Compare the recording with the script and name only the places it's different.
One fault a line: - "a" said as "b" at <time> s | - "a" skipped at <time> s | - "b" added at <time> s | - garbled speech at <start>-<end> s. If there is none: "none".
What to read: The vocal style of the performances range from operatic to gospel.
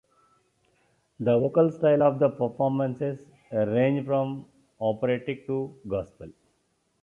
none